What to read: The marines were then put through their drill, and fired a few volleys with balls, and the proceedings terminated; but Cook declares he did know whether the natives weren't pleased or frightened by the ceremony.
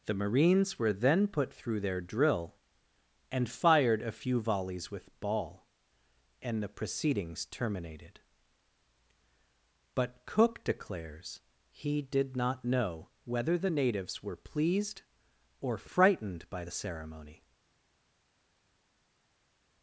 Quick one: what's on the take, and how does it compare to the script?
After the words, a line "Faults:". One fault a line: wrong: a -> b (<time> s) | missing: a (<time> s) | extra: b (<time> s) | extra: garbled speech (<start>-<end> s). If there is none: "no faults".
The marines were then put through their drill, and fired a few volleys with ball, and the proceedings terminated; but Cook declares he did not know whether the natives were pleased or frightened by the ceremony.
Faults:
wrong: balls -> ball (5.2 s)
extra: not (12.3 s)
wrong: weren't -> were (14.2 s)